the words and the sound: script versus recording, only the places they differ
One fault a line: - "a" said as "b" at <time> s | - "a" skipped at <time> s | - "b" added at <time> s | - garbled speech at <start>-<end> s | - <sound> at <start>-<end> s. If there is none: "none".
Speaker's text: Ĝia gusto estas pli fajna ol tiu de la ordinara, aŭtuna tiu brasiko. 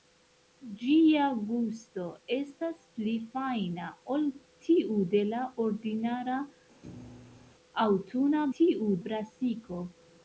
- thud at 6.8-7.6 s